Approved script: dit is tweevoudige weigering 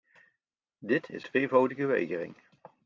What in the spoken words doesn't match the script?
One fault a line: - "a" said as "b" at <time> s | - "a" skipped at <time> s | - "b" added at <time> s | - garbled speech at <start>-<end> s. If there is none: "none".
none